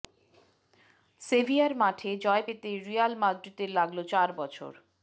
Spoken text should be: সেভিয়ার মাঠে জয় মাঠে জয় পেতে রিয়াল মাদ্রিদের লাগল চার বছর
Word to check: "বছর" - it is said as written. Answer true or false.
true